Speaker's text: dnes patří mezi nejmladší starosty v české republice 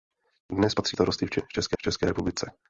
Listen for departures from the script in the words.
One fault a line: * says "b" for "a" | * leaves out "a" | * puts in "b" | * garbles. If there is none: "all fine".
* leaves out "mezi nejmladší"
* puts in "české"